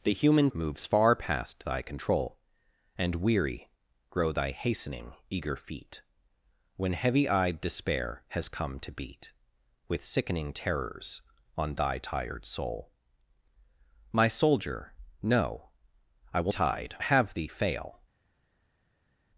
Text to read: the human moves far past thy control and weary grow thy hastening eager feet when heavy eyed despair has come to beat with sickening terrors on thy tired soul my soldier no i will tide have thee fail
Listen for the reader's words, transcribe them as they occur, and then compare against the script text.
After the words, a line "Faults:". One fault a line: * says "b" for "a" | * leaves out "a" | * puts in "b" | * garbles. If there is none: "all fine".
the human moves far past thy control and weary grow thy hastening eager feet when heavy eyed despair has come to beat with sickening terrors on thy tired soul my soldier no i will tide have thee fail
Faults:
all fine